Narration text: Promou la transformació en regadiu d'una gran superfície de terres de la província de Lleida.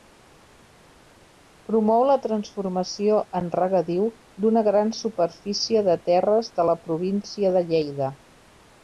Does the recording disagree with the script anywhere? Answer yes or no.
no